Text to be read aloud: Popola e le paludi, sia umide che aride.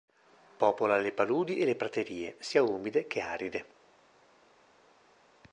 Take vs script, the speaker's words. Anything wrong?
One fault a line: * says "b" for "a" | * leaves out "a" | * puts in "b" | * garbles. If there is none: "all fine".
* puts in "le paludi"
* says "praterie" for "paludi"